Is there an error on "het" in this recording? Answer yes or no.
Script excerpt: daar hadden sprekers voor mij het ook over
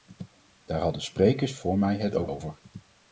no